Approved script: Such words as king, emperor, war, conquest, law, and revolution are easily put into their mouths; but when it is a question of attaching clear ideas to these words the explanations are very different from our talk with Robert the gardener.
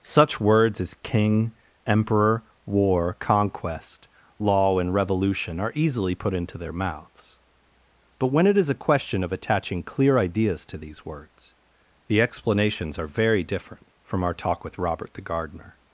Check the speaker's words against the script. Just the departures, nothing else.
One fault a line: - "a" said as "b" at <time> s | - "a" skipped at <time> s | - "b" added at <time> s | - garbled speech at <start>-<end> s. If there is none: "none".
none